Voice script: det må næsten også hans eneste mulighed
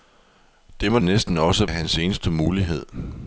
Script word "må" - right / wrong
right